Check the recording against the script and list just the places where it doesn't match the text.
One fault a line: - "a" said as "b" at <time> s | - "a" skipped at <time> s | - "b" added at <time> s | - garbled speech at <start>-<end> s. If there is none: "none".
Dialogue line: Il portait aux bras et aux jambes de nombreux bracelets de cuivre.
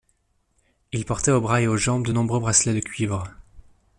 none